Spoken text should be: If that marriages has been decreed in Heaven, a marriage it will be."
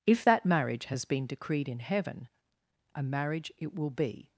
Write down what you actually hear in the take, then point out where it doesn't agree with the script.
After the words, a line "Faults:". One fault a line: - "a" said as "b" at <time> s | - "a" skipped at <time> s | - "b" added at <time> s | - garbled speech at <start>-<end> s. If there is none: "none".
If that marriage has been decreed in Heaven, a marriage it will be."
Faults:
- "marriages" said as "marriage" at 0.4 s